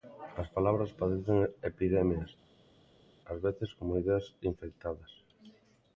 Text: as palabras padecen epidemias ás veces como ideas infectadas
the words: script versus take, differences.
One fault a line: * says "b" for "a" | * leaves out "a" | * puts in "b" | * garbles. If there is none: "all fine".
all fine